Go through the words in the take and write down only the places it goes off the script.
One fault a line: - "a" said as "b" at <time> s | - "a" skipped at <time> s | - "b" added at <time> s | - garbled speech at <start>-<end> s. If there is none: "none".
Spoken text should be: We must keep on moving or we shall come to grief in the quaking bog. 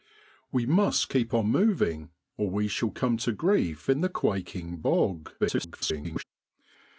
- garbled speech at 5.4-6.2 s